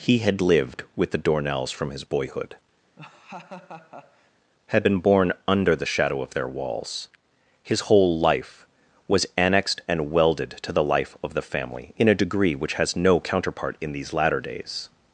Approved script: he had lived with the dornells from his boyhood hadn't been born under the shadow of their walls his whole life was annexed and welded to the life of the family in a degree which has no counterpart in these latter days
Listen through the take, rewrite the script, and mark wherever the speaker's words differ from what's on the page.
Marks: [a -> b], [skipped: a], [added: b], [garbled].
he had lived with the dornells from his boyhood [hadn't -> had] been born under the shadow of their walls his whole life was annexed and welded to the life of the family in a degree which has no counterpart in these latter days